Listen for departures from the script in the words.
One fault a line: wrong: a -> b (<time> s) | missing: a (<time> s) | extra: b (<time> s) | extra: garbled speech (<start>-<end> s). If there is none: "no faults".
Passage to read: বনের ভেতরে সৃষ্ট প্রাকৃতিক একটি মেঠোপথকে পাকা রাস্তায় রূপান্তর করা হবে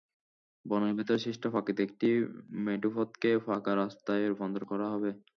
no faults